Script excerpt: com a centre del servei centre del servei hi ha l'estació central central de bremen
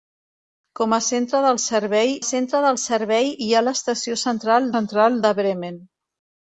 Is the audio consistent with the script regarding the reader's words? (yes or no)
yes